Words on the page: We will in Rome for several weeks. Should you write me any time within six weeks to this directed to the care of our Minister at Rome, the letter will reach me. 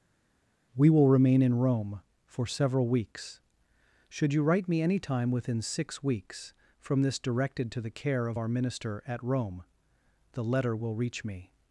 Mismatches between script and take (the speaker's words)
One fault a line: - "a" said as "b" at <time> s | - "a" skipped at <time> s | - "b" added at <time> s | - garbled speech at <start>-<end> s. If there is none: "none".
- "remain" added at 1.1 s
- "to" said as "from" at 6.8 s